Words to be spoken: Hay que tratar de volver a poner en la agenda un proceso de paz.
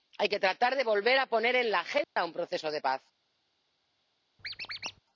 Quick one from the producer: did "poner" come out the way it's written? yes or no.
yes